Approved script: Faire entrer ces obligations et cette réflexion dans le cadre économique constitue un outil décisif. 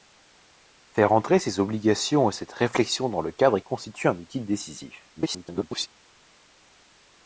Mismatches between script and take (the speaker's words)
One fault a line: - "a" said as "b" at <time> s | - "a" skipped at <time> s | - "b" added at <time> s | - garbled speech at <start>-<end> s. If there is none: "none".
- "économique" skipped at 3.6 s
- garbled speech at 5.2-5.9 s